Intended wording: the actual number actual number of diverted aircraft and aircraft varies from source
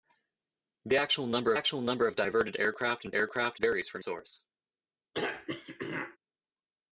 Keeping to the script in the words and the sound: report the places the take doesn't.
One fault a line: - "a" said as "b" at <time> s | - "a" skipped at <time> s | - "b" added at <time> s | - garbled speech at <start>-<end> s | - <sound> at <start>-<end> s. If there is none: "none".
- throat clearing at 5.1-6.2 s